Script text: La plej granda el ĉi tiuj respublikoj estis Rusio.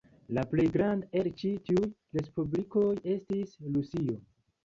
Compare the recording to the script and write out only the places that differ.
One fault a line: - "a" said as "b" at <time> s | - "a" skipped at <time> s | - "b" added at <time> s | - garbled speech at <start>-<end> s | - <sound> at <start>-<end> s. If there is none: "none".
none